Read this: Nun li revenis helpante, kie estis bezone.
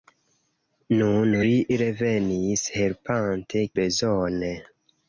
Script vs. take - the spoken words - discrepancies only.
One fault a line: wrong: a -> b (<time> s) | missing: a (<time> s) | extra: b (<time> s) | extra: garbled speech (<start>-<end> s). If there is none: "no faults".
missing: kie estis (3.7 s)